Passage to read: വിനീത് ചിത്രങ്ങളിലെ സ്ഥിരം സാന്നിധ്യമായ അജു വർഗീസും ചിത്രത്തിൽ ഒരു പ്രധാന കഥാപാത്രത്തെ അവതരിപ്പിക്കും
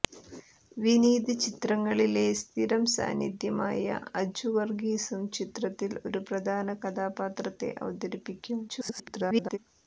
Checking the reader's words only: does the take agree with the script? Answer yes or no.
no